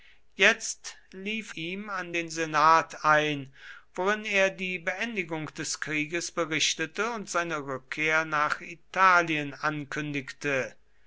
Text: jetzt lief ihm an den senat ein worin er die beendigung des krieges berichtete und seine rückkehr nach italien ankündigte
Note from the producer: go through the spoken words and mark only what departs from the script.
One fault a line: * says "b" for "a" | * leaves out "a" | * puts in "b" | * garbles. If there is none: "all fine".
all fine